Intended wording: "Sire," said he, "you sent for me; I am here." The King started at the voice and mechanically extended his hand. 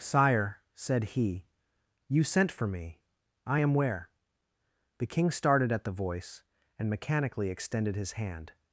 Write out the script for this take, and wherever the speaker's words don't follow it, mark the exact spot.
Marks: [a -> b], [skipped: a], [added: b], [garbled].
"Sire," said he, "you sent for me; I am [here." -> where] The King started at the voice and mechanically extended his hand.